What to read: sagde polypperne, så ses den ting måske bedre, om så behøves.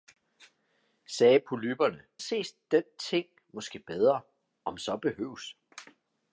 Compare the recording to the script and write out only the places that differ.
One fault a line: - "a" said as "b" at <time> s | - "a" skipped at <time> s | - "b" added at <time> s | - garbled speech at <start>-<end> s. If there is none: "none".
- "så" skipped at 2.0 s